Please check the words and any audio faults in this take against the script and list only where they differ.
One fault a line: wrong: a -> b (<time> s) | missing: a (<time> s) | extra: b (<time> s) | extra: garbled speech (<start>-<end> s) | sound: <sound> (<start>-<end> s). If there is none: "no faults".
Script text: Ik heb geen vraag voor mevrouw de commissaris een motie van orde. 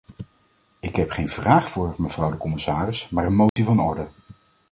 extra: maar (3.1 s)
sound: dropout (3.5-3.6 s)